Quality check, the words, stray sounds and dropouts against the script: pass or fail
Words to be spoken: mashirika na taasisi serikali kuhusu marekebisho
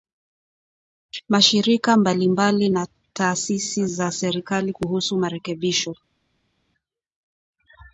fail